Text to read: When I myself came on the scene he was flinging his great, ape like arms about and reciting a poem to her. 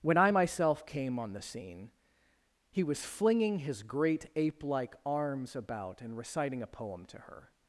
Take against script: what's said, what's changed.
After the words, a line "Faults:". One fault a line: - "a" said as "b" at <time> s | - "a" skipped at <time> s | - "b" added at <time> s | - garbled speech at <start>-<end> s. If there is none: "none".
When I myself came on the scene he was flinging his great, ape like arms about and reciting a poem to her.
Faults:
none